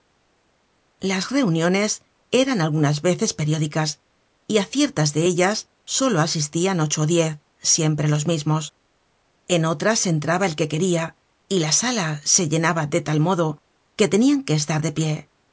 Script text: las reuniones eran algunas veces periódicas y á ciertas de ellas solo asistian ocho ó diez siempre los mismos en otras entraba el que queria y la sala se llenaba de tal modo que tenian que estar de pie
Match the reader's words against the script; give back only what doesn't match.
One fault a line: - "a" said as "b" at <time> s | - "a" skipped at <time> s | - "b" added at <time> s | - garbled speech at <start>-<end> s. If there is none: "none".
none